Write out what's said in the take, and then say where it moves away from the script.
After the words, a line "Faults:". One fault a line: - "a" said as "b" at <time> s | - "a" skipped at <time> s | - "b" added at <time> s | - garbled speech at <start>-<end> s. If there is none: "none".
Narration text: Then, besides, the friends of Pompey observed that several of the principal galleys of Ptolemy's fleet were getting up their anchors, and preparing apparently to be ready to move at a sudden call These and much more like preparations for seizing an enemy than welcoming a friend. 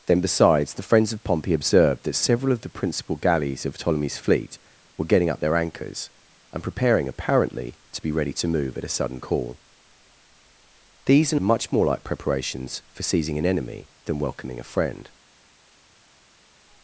Then, besides, the friends of Pompey observed that several of the principal galleys of Ptolemy's fleet were getting up their anchors, and preparing apparently to be ready to move at a sudden call These and much more like preparations for seizing an enemy than welcoming a friend.
Faults:
none